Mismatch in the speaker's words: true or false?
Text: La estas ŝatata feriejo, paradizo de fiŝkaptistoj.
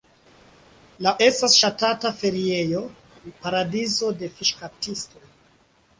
false